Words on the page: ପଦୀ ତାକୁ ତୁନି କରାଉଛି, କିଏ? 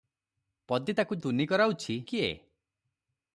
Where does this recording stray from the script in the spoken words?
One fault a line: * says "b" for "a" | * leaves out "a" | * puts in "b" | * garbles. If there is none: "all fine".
all fine